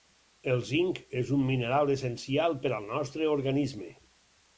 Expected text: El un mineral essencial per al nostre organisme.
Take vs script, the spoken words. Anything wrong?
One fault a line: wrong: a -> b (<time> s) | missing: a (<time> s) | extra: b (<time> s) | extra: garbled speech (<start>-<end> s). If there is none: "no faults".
extra: zinc és (0.7 s)